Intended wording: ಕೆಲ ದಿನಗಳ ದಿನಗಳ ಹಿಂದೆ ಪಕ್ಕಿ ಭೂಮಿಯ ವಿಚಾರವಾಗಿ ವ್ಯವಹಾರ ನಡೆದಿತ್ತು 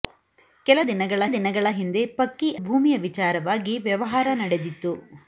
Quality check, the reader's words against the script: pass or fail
pass